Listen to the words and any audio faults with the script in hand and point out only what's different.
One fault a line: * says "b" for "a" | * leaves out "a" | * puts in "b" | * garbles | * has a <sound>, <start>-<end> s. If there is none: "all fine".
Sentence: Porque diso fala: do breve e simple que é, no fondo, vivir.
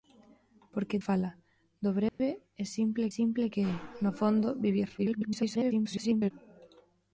* leaves out "diso"
* has a dropout, 2.1-2.2 s
* puts in "simple"
* garbles